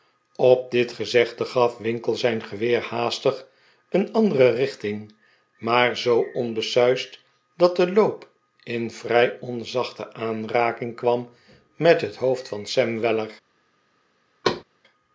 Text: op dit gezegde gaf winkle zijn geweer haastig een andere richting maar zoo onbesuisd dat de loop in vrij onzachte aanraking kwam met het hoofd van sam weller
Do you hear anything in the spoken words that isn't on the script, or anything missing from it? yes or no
no